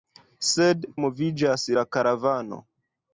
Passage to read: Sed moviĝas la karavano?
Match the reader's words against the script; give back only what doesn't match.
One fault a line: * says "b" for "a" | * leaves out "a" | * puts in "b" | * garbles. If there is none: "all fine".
all fine